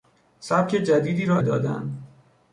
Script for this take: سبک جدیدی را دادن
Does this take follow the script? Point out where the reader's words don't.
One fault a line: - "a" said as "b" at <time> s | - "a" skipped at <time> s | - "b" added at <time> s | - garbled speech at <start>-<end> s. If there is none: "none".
none